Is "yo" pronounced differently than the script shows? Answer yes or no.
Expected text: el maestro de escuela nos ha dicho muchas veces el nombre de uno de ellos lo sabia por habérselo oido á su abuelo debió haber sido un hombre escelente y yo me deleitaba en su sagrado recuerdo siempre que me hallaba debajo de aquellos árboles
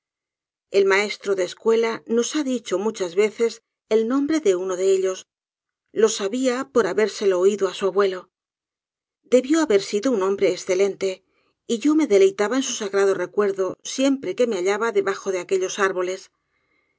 no